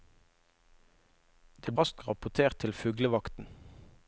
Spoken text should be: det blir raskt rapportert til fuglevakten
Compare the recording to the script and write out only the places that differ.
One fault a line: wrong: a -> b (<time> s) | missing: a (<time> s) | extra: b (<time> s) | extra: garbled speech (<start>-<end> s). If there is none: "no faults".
missing: blir (1.7 s)